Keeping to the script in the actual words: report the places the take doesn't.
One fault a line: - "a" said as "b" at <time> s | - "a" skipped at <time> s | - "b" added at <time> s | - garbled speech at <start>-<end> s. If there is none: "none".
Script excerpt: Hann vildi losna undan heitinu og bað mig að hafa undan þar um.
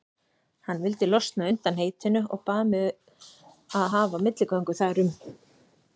- "undan" said as "milligöngu" at 4.3 s